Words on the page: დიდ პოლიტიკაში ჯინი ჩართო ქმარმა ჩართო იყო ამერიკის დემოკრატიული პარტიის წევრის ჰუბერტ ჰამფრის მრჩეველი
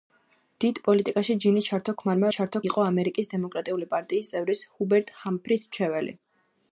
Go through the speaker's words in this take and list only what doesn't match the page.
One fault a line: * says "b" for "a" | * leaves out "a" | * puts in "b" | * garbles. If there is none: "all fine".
all fine